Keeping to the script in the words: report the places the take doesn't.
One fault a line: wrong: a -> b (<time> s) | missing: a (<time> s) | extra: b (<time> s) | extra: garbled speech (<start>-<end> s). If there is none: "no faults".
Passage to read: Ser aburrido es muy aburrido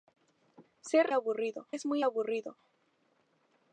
no faults